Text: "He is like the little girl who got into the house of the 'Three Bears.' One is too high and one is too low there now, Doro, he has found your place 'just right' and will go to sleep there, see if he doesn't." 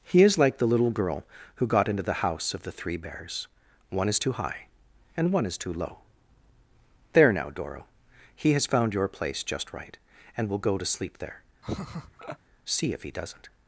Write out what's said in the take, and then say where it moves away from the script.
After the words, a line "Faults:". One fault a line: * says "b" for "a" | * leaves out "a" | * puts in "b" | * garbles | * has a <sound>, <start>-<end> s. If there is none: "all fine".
"He is like the little girl who got into the house of the 'Three Bears.' One is too high and one is too low there now, Doro, he has found your place 'just right' and will go to sleep there, see if he doesn't."
Faults:
* has a laugh, 11.6-12.4 s